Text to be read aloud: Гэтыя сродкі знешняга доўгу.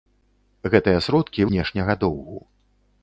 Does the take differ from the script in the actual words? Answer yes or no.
no